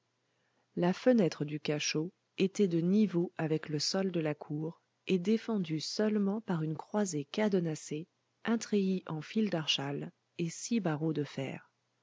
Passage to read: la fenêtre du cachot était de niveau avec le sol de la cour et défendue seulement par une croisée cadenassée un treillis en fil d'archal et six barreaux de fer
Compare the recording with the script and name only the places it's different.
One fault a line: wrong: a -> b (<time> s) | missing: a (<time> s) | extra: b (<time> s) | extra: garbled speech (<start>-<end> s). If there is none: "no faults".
no faults